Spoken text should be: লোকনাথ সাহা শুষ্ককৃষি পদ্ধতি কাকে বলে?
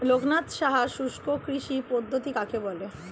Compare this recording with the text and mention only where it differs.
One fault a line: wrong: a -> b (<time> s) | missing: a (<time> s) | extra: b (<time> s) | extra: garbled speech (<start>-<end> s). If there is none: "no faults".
no faults